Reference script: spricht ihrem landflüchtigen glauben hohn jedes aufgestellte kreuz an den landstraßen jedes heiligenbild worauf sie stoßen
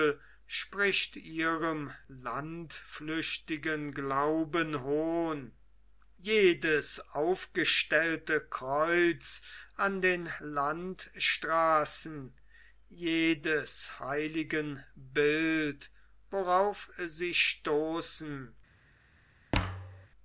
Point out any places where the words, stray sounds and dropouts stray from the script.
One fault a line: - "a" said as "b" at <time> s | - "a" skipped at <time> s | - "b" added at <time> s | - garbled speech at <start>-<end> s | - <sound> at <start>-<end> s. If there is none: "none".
- thud at 19.5-20.1 s